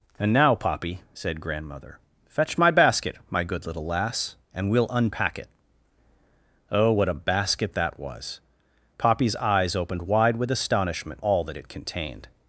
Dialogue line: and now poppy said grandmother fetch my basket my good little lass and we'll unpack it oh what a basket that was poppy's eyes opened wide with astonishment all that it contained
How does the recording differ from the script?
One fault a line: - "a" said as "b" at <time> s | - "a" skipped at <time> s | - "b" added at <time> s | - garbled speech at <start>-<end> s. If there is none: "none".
none